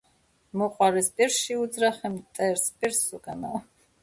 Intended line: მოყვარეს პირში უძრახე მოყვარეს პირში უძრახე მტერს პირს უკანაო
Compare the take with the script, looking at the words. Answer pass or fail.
fail